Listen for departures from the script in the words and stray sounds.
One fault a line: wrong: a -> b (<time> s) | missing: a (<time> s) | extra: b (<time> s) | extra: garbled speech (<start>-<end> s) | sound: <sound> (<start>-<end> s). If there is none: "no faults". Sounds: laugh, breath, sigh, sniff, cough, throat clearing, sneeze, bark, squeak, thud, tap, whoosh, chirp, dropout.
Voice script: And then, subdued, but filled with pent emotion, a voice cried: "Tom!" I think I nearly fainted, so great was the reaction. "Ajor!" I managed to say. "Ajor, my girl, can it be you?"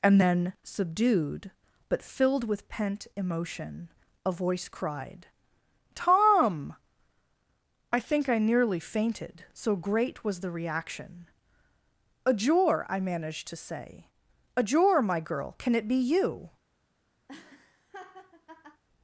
sound: laugh (17.3-18.8 s)